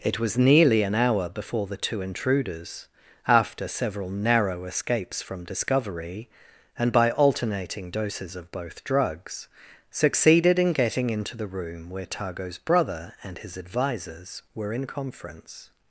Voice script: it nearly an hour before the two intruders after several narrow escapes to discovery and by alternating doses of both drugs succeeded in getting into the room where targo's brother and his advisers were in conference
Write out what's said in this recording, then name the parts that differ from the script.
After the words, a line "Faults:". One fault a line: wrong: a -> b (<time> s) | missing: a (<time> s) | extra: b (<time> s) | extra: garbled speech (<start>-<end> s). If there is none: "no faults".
it was nearly an hour before the two intruders after several narrow escapes from discovery and by alternating doses of both drugs succeeded in getting into the room where targo's brother and his advisers were in conference
Faults:
extra: was (0.2 s)
wrong: to -> from (5.2 s)